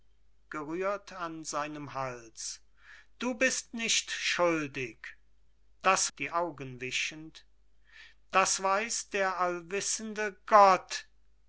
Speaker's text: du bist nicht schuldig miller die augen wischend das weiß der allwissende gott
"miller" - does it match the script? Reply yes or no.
no